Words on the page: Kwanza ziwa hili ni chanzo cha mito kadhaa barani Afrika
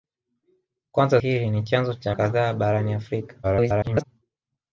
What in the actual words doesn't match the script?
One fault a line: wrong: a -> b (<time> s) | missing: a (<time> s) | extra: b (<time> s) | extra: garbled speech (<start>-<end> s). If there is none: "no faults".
missing: ziwa (1.2 s)
missing: mito (2.1 s)
extra: garbled speech (3.4-4.0 s)